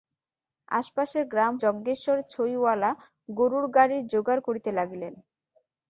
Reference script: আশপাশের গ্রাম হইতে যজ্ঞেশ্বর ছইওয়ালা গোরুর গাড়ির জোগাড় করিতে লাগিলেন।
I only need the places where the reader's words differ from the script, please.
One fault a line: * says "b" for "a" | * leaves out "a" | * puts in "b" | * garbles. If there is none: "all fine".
* leaves out "হইতে"